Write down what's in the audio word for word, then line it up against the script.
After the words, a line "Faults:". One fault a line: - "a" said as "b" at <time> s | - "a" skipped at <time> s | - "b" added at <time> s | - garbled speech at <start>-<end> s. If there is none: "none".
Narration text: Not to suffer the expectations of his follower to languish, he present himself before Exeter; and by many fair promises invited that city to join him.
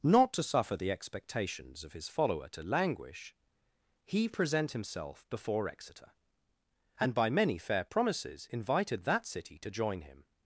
Not to suffer the expectations of his follower to languish, he present himself before Exeter; and by many fair promises invited that city to join him.
Faults:
none